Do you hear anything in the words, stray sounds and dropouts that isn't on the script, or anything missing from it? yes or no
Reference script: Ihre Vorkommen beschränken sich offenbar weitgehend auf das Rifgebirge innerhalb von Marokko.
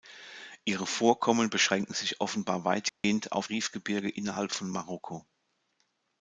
yes